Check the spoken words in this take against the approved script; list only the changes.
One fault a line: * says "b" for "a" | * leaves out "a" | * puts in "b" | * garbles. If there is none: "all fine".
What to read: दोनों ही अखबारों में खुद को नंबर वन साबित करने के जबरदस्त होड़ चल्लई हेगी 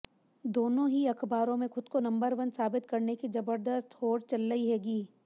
* says "की" for "के"